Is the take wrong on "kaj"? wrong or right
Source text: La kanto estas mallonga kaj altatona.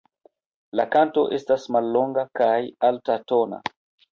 right